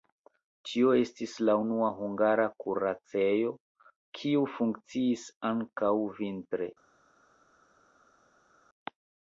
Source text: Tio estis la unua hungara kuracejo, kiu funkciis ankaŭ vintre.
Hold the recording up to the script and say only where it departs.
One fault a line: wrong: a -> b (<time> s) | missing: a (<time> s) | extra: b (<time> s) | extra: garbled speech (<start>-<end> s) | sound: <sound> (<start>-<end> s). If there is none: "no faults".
no faults